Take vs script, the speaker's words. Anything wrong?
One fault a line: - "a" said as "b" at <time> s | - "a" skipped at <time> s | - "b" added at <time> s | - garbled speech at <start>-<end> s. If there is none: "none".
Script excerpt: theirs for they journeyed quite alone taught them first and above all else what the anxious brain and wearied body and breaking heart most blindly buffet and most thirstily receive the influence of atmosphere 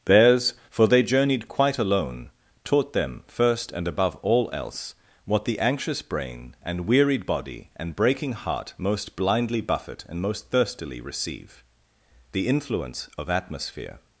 none